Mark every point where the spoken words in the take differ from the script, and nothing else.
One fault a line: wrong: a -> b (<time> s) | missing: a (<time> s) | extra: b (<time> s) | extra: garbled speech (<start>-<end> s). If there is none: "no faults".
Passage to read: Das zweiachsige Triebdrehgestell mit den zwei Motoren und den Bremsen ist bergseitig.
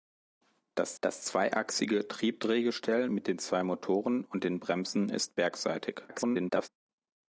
extra: das (1.0 s)
extra: garbled speech (6.1-6.7 s)